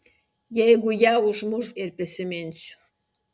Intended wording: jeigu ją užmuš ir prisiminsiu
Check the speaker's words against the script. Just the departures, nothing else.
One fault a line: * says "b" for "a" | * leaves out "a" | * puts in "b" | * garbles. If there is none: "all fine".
all fine